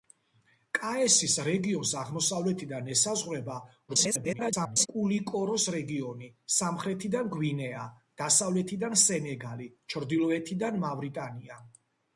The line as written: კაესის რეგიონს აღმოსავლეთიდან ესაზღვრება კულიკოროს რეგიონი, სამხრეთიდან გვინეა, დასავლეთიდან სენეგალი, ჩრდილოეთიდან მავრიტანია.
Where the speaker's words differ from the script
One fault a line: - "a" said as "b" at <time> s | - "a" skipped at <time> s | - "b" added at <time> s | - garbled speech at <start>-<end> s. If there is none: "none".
- garbled speech at 3.9-4.9 s